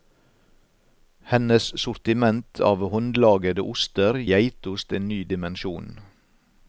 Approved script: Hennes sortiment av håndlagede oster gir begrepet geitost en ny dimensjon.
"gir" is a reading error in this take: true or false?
true